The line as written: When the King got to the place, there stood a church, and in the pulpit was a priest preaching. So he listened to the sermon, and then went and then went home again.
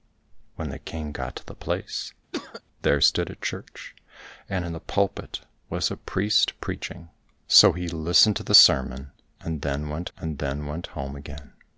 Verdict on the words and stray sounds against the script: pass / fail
fail